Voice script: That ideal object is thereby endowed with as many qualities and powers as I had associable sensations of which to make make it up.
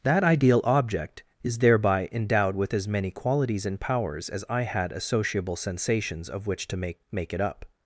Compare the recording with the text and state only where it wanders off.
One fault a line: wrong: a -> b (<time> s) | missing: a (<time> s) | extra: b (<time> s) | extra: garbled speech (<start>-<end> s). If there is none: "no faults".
no faults